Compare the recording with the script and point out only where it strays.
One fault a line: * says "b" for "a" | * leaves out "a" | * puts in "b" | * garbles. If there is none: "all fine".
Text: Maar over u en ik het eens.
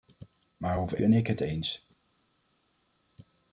all fine